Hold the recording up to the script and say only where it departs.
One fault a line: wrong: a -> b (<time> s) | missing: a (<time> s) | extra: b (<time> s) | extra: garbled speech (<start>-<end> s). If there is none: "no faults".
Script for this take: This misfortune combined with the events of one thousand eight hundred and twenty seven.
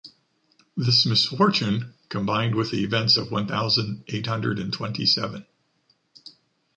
no faults